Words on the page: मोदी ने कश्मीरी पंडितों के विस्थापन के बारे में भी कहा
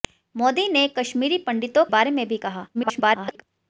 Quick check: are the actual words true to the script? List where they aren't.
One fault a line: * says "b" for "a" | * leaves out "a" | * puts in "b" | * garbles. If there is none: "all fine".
* leaves out "के विस्थापन के"
* garbles